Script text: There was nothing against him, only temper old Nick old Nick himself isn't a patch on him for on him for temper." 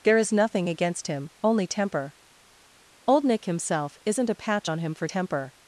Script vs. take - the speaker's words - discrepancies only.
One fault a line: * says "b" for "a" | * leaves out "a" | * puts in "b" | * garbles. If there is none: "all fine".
* says "is" for "was"
* leaves out "old Nick"
* leaves out "on him for"